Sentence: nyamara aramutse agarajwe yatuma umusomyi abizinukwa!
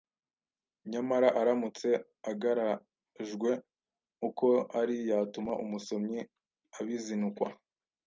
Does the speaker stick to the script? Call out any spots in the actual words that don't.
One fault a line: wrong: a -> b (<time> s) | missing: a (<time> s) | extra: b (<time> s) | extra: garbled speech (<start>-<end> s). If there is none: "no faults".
extra: uko ari (4.3 s)